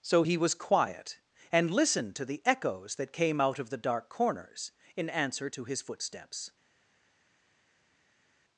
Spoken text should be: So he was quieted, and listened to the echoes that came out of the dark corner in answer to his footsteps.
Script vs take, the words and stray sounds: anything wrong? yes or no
yes